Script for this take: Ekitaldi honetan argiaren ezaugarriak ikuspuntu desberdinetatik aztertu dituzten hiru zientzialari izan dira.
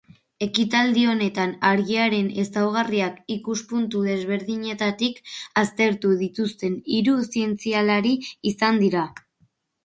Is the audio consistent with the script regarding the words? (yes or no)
yes